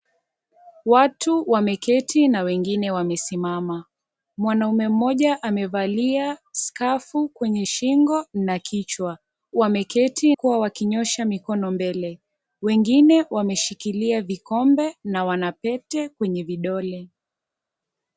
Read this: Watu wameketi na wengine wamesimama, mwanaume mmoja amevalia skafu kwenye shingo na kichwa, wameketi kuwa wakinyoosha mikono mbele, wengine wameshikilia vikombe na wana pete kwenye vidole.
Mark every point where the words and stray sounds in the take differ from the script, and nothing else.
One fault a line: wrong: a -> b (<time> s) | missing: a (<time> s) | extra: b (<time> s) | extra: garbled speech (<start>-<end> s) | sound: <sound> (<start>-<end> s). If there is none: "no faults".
no faults